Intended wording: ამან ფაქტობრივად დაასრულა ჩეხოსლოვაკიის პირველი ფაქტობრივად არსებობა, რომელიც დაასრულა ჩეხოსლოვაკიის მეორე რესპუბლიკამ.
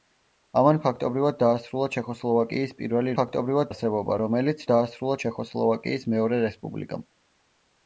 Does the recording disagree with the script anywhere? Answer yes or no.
no